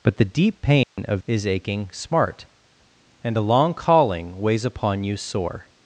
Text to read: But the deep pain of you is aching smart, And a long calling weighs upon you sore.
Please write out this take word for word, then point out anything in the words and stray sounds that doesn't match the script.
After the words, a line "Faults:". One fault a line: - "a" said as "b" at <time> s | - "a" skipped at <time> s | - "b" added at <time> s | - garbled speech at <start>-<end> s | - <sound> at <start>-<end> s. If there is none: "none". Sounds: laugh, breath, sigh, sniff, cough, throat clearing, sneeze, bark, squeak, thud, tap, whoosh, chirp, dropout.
But the deep pain of is aching smart, And a long calling weighs upon you sore.
Faults:
- dropout at 0.8-1.0 s
- "you" skipped at 1.2 s